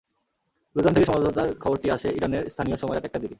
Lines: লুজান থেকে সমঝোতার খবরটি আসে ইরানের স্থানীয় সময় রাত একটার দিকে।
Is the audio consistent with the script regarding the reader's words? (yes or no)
yes